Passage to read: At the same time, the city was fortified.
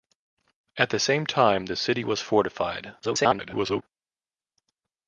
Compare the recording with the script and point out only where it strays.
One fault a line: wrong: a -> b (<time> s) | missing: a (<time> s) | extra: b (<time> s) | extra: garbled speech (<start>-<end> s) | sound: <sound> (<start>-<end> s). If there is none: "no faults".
extra: garbled speech (3.0-3.8 s)